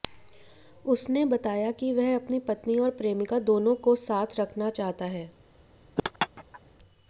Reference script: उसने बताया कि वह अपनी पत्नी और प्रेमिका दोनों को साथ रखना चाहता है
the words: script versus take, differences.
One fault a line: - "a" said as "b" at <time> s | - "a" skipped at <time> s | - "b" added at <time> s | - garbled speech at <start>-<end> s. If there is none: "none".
none